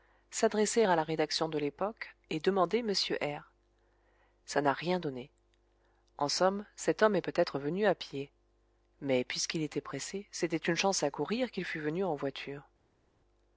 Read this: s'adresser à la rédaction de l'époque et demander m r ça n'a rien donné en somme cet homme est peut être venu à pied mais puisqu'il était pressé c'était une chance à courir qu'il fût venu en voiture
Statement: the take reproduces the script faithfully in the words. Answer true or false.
true